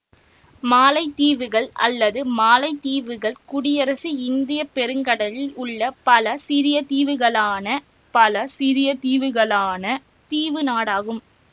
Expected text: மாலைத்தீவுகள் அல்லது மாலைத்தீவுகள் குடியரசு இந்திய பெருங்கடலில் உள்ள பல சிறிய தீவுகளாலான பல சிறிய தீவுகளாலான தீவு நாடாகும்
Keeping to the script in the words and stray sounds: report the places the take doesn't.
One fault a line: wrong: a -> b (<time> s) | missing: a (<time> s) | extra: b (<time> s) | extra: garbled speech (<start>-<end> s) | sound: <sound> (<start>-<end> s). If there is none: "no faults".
no faults